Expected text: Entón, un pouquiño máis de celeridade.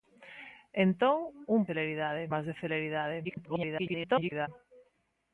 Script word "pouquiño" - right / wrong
wrong